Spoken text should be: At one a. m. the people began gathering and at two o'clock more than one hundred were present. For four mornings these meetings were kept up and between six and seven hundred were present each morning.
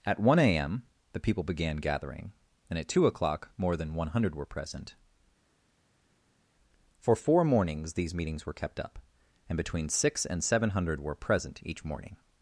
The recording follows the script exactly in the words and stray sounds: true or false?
true